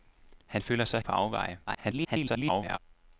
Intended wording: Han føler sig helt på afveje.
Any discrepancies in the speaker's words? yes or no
yes